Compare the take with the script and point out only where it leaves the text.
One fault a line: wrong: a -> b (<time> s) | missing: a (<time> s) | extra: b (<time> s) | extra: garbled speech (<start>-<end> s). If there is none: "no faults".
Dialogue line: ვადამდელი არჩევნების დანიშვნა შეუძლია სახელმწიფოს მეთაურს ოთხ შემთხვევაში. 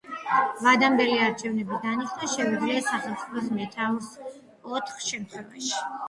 no faults